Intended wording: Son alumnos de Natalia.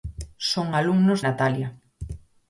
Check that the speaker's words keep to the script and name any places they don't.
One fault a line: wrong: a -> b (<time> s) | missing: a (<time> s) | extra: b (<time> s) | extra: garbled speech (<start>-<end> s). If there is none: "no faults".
missing: de (1.2 s)